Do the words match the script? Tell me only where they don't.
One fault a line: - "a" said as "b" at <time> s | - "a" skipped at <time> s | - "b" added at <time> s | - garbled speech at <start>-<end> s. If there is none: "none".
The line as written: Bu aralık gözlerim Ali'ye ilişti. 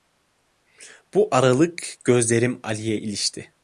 none